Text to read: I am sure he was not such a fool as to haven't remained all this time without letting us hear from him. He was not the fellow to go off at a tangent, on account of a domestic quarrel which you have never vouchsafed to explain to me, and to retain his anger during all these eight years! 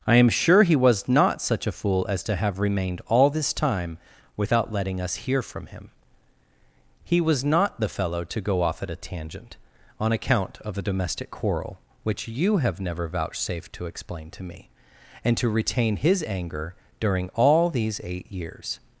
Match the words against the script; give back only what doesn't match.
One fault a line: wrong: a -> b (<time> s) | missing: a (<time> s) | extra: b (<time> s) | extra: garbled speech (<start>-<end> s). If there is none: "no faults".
wrong: haven't -> have (2.4 s)